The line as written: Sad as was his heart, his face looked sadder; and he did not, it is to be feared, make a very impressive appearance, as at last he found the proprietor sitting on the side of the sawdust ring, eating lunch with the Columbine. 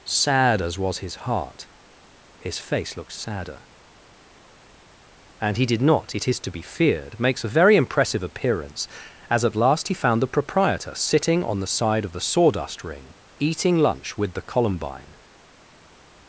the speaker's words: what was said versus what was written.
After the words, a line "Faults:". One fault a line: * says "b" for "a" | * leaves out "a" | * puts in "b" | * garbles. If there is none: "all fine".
Sad as was his heart, his face looked sadder; and he did not, it is to be feared, makes a very impressive appearance, as at last he found the proprietor sitting on the side of the sawdust ring, eating lunch with the Columbine.
Faults:
* says "makes" for "make"